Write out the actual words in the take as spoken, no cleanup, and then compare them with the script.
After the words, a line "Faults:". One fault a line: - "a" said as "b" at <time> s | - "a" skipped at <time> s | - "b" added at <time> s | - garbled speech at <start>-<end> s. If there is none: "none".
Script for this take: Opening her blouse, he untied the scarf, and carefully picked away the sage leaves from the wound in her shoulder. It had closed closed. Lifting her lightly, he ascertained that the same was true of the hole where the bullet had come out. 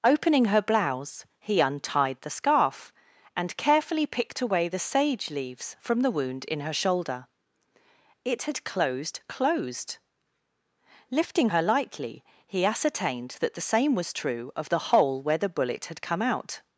Opening her blouse, he untied the scarf, and carefully picked away the sage leaves from the wound in her shoulder. It had closed closed. Lifting her lightly, he ascertained that the same was true of the hole where the bullet had come out.
Faults:
none